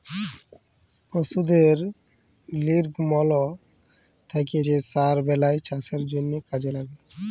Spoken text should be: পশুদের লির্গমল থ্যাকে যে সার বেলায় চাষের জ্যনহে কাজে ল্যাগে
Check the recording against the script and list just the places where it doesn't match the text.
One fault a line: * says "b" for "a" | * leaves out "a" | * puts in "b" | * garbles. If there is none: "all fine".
all fine